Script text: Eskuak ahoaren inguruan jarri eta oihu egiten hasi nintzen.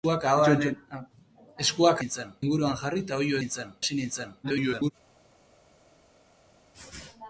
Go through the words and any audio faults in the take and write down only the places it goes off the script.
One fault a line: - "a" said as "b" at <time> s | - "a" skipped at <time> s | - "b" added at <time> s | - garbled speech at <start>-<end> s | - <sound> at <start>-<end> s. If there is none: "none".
- "ahoaren" said as "nintzen" at 2.0 s
- "egiten" said as "nintzen" at 3.4 s
- garbled speech at 4.4-4.9 s